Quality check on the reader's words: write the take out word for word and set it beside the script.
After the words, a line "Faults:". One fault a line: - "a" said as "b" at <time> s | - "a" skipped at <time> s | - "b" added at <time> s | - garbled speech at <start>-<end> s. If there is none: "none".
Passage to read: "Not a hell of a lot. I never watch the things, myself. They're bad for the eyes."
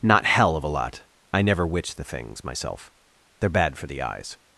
"Not hell of a lot. I never witch the things, myself. They're bad for the eyes."
Faults:
- "a" skipped at 0.2 s
- "watch" said as "witch" at 1.7 s